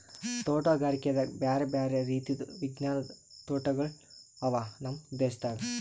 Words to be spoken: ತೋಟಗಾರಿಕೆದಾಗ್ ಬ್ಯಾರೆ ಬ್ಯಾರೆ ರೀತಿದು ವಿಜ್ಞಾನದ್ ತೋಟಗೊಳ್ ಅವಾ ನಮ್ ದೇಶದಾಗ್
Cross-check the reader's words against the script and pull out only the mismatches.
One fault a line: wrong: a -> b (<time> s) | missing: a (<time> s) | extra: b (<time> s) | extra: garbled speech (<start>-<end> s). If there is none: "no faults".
no faults